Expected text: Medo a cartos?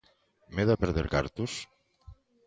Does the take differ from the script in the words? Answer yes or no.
yes